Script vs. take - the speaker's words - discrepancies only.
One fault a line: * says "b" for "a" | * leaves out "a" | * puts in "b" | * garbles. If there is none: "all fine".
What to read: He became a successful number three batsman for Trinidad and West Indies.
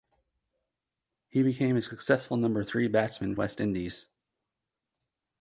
* leaves out "for Trinidad and"